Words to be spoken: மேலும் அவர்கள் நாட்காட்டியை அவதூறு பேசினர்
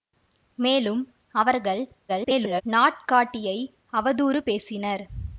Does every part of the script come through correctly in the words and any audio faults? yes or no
no